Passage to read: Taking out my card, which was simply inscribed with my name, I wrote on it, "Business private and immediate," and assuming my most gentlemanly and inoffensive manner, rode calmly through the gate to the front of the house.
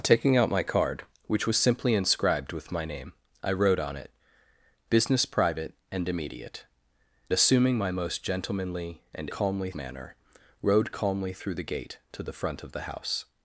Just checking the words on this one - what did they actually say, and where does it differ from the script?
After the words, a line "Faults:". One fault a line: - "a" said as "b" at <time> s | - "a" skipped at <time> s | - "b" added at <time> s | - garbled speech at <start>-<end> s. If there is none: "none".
Taking out my card, which was simply inscribed with my name, I wrote on it, "Business private and immediate," assuming my most gentlemanly and calmly manner, rode calmly through the gate to the front of the house.
Faults:
- "and" skipped at 6.7 s
- "inoffensive" said as "calmly" at 9.3 s